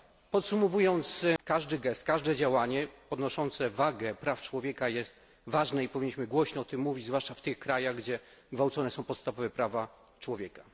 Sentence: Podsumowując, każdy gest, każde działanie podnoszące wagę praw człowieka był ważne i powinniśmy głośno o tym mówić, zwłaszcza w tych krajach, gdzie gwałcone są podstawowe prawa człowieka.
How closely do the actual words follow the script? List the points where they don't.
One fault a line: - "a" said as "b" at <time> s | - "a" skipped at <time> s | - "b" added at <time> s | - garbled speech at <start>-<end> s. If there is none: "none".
- "był" said as "jest" at 4.9 s